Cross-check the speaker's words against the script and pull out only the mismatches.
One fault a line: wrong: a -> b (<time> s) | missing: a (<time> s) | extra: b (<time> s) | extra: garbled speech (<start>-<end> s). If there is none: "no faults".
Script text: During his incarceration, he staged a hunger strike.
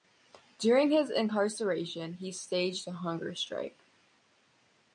no faults